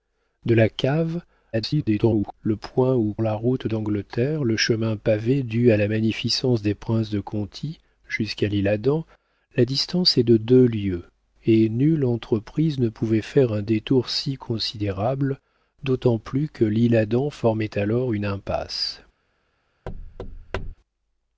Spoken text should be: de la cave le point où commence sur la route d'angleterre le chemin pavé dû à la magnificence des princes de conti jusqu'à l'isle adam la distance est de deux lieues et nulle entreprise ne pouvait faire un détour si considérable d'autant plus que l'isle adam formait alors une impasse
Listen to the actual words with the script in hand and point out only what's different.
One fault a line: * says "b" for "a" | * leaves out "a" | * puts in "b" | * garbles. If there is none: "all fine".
* garbles
* leaves out "commence sur"